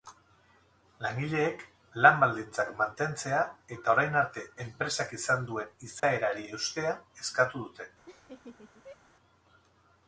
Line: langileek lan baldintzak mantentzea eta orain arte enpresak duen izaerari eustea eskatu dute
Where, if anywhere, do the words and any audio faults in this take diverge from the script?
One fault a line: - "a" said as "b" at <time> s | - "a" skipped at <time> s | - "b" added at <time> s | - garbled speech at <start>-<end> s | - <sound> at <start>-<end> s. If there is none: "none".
- "izan" added at 5.2 s
- dropout at 6.0-6.0 s
- laugh at 8.1-9.0 s